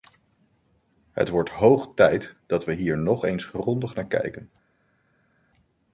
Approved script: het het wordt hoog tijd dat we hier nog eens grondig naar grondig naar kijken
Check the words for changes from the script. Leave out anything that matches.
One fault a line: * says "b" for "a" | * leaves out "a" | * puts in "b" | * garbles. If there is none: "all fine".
* leaves out "het"
* leaves out "grondig naar"